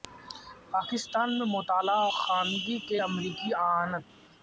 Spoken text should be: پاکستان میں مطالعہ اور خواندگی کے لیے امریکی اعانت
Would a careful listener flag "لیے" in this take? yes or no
yes